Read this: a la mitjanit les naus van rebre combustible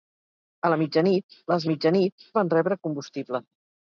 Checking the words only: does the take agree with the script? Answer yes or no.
no